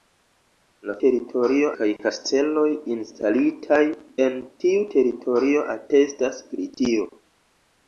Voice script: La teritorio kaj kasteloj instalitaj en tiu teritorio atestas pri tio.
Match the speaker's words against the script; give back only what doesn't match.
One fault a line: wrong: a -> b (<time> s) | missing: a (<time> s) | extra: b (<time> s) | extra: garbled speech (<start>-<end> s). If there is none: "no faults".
no faults